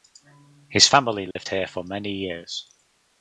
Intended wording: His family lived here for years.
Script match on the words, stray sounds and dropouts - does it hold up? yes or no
no